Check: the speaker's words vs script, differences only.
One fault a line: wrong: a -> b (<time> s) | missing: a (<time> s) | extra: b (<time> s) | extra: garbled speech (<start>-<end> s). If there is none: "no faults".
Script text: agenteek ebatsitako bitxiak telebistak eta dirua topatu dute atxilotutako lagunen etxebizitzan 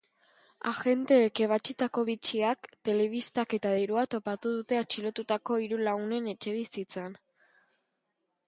extra: hiru (5.7 s)